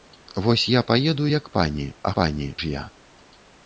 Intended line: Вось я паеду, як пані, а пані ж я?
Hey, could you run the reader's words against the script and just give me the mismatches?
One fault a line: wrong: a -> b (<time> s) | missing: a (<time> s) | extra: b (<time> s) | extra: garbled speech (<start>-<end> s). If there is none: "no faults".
no faults